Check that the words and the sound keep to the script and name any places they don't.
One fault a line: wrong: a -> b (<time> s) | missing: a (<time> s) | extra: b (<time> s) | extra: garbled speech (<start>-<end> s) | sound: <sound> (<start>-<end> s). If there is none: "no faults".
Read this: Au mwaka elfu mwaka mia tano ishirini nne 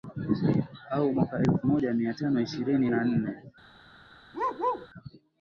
wrong: mwaka -> moja (1.6 s)
extra: na (2.9 s)
sound: bark (4.3-4.9 s)